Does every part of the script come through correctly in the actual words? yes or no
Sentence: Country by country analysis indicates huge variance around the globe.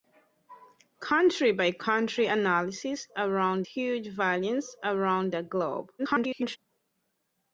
no